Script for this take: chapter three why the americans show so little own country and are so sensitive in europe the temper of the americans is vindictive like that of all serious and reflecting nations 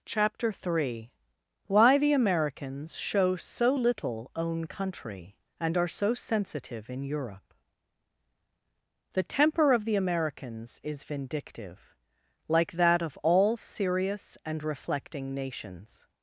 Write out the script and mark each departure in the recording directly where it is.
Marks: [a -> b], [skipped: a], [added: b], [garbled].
chapter three why the americans show so little own country and are so sensitive in europe the temper of the americans is vindictive like that of all serious and reflecting nations